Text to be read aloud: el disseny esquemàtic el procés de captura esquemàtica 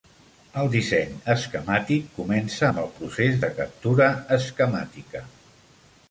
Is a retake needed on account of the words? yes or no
yes